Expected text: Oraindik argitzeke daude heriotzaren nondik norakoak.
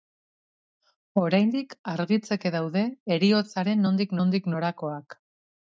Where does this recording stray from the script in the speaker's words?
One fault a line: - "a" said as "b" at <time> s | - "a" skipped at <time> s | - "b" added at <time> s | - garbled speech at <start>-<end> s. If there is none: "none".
- "nondik" added at 4.2 s